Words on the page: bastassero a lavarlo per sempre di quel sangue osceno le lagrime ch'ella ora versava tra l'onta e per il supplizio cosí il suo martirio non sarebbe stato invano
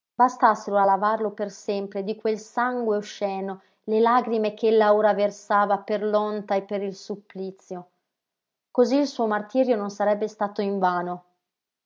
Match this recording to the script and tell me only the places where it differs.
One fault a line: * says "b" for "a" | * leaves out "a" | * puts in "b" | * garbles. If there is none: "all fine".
* says "per" for "tra"